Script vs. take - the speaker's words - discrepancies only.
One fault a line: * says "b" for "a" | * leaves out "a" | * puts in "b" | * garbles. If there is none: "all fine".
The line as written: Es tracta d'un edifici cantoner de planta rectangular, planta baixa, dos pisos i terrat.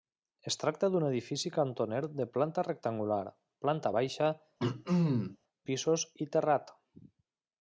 * leaves out "dos"